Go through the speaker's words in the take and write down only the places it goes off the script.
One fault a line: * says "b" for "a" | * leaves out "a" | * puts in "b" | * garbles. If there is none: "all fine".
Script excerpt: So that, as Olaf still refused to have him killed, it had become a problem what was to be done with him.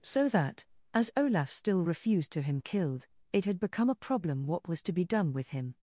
* leaves out "have"